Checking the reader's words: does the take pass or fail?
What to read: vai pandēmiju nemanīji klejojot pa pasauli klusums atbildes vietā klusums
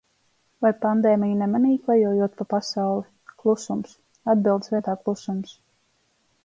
pass